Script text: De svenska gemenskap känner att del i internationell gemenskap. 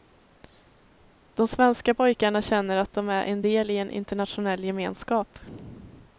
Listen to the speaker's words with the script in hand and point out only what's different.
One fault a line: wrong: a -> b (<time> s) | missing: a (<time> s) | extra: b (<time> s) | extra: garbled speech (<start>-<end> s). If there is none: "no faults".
wrong: gemenskap -> pojkarna (1.9 s)
extra: de är en (2.9 s)
extra: en (3.8 s)